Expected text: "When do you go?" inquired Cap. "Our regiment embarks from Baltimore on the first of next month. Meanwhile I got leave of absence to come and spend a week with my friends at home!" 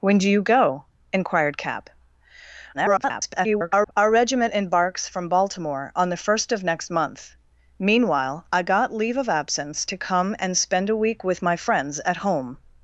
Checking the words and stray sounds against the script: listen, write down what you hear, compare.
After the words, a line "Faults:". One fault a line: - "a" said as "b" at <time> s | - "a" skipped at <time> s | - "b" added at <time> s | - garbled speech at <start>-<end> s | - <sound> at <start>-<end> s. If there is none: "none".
"When do you go?" inquired Cap. [garbled] "Our regiment embarks from Baltimore on the first of next month. Meanwhile I got leave of absence to come and spend a week with my friends at home!"
Faults:
- garbled speech at 2.7-3.9 s